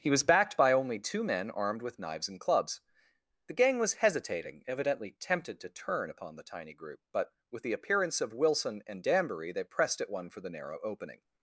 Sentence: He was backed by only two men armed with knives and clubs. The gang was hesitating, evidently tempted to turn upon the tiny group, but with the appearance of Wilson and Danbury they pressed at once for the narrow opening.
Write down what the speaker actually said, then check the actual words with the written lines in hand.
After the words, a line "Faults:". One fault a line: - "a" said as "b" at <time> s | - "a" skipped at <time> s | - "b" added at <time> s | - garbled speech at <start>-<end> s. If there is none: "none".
He was backed by only two men armed with knives and clubs. The gang was hesitating, evidently tempted to turn upon the tiny group, but with the appearance of Wilson and Danbury they pressed at one for the narrow opening.
Faults:
- "once" said as "one" at 10.1 s